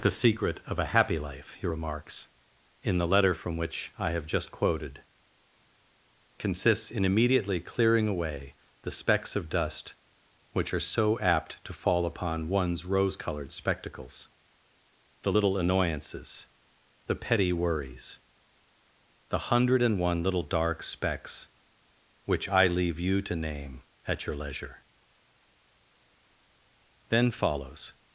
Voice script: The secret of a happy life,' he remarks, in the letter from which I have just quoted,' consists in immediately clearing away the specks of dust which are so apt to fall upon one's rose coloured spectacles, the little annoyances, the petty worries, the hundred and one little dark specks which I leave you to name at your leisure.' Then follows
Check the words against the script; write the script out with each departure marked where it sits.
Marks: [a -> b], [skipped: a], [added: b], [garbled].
The secret of a happy life,' he remarks, in the letter from which I have just quoted,' consists in immediately clearing away the specks of dust which are so apt to fall upon one's rose coloured spectacles, the little annoyances, the petty worries, the hundred and one little dark specks which I leave you to name at your leisure.' Then follows